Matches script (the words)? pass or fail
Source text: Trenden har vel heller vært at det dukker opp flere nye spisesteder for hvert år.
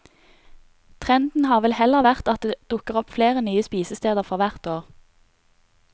pass